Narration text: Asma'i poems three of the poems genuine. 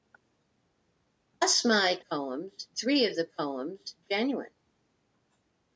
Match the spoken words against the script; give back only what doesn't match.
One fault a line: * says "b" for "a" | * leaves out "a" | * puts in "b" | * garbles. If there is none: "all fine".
all fine